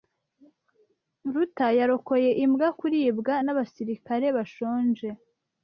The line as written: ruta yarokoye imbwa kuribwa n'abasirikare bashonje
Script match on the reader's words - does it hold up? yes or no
yes